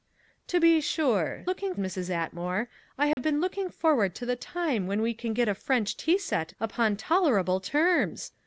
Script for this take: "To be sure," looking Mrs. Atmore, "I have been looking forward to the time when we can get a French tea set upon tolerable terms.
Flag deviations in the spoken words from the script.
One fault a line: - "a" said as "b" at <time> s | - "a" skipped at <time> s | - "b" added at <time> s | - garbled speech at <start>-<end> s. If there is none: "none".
none